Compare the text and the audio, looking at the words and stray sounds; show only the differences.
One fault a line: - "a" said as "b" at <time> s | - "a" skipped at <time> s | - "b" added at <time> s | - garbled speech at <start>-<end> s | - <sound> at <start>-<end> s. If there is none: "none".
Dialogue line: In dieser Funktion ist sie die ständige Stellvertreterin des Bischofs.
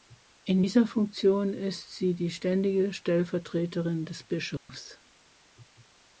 - dropout at 4.6-4.7 s